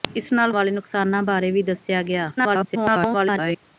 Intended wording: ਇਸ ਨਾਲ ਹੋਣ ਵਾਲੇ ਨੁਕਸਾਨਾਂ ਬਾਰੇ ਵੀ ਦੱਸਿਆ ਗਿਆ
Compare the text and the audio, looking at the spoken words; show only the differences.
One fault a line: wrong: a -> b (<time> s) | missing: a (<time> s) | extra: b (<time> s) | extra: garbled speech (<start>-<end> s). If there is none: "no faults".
missing: ਹੋਣ (0.5 s)
extra: garbled speech (2.4-3.6 s)